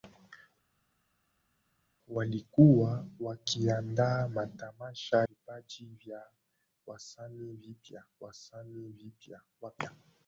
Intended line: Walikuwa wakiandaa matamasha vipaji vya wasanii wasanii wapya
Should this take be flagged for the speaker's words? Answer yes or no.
no